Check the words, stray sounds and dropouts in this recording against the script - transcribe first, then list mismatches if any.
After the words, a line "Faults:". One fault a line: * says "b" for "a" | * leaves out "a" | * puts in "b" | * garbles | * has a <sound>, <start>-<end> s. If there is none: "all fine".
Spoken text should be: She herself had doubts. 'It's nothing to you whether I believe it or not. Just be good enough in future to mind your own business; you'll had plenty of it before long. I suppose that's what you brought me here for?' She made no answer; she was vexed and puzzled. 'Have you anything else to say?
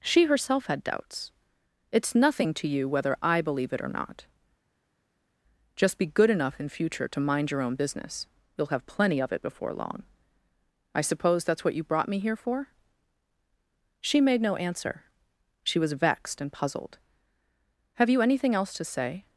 She herself had doubts. 'It's nothing to you whether I believe it or not. Just be good enough in future to mind your own business; you'll have plenty of it before long. I suppose that's what you brought me here for?' She made no answer; she was vexed and puzzled. 'Have you anything else to say?
Faults:
* says "have" for "had"